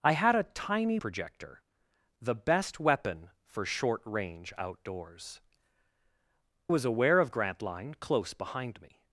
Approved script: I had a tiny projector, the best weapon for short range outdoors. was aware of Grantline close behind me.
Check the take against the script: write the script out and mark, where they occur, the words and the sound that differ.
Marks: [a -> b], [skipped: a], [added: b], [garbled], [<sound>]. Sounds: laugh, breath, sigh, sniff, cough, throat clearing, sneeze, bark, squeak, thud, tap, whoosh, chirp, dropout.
I had a tiny projector, the best weapon for short range outdoors. was aware of Grantline close behind me.